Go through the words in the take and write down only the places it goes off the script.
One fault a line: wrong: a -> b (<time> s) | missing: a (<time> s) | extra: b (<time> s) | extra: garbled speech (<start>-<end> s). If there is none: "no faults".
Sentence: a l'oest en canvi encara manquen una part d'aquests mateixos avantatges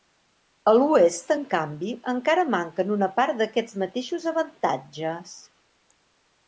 no faults